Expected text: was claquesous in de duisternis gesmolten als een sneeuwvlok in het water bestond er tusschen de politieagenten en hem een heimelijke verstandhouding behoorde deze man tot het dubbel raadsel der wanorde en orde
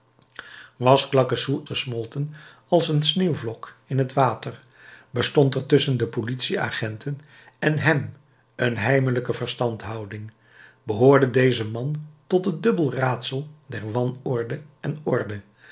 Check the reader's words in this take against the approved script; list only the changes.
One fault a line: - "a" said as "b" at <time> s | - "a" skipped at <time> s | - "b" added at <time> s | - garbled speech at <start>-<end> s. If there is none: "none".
- "in de duisternis" skipped at 1.6 s